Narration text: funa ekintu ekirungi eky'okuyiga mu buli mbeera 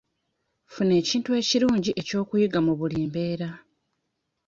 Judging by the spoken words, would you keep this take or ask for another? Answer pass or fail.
pass